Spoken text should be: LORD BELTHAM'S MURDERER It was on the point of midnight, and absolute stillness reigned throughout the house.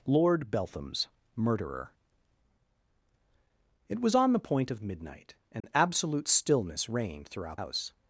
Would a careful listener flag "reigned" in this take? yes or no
no